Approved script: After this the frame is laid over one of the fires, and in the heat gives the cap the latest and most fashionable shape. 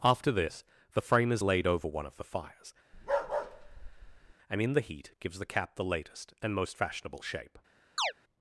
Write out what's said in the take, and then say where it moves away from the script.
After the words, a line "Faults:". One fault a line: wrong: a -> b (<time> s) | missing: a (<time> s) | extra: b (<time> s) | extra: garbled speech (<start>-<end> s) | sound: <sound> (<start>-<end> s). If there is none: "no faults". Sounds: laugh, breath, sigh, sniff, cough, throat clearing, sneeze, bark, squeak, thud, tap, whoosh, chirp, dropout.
After this the frame is laid over one of the fires, and in the heat gives the cap the latest and most fashionable shape.
Faults:
sound: bark (2.9-4.3 s)
sound: chirp (8.0-8.1 s)